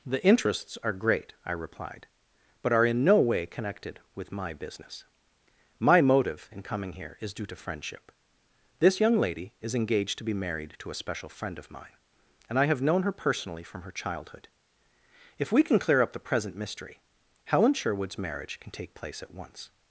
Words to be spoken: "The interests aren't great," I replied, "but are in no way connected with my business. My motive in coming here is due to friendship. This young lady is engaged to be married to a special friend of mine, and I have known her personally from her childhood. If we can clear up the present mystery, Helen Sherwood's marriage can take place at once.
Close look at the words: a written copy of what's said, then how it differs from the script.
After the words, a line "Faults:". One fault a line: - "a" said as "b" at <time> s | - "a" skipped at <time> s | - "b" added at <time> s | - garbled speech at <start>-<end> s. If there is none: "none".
"The interests are great," I replied, "but are in no way connected with my business. My motive in coming here is due to friendship. This young lady is engaged to be married to a special friend of mine, and I have known her personally from her childhood. If we can clear up the present mystery, Helen Sherwood's marriage can take place at once.
Faults:
- "aren't" said as "are" at 0.8 s